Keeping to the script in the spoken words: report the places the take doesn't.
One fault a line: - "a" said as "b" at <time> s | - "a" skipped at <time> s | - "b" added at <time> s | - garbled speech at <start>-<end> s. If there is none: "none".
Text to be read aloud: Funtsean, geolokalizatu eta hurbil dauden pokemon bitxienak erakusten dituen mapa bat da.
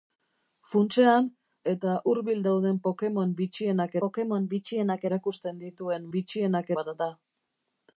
- "geolokalizatu" skipped at 1.2 s
- "pokemon bitxienak" added at 4.0 s
- "mapa" said as "bitxienak" at 6.2 s